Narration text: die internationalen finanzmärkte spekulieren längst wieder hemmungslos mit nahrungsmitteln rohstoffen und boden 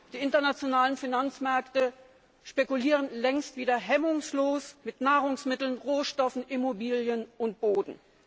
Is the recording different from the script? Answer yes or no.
yes